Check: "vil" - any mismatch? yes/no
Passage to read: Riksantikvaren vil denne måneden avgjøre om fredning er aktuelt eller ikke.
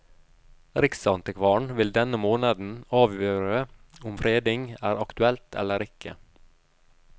no